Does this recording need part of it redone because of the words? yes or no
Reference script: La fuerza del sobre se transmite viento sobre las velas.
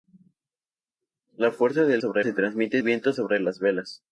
no